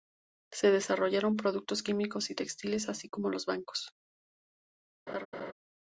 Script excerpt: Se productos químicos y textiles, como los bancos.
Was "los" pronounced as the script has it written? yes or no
yes